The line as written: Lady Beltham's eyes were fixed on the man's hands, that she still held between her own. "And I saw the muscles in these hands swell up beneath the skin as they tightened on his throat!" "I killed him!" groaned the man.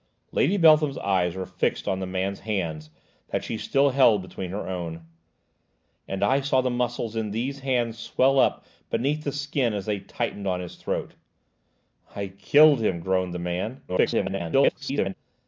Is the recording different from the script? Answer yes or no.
yes